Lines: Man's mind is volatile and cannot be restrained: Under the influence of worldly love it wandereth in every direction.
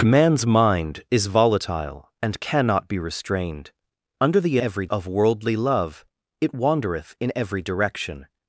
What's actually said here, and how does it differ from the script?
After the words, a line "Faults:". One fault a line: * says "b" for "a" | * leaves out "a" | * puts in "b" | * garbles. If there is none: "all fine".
Man's mind is volatile and cannot be restrained: Under the every of worldly love it wandereth in every direction.
Faults:
* says "every" for "influence"